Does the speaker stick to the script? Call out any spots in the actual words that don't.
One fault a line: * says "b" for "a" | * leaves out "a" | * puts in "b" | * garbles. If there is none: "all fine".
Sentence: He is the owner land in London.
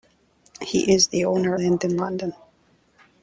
all fine